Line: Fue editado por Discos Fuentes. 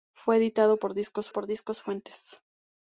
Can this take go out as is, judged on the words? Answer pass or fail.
fail